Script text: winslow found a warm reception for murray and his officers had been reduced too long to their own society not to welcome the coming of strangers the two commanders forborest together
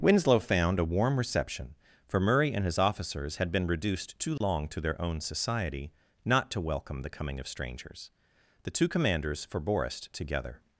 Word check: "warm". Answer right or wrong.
right